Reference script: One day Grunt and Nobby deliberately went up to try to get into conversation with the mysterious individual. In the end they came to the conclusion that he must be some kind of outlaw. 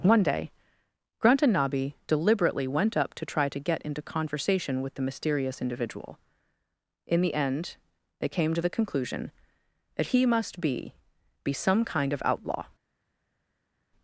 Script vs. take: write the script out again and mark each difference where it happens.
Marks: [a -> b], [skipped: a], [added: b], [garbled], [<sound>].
One day Grunt and Nobby deliberately went up to try to get into conversation with the mysterious individual. In the end they came to the conclusion that he must be [added: be] some kind of outlaw.